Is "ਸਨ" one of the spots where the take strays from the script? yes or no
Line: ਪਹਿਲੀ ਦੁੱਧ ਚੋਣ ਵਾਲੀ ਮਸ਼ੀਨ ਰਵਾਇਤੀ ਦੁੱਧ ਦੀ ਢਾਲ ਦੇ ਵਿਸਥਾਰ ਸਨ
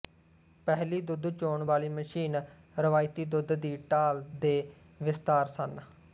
no